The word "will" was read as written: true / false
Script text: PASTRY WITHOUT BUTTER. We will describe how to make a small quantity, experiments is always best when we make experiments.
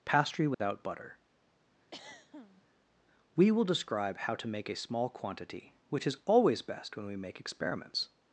true